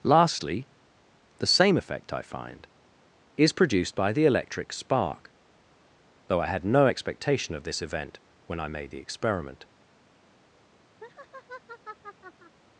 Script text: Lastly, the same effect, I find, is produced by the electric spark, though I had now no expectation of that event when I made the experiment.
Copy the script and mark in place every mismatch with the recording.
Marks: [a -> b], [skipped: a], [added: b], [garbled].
Lastly, the same effect, I find, is produced by the electric spark, though I had [skipped: now] no expectation of [that -> this] event when I made the experiment.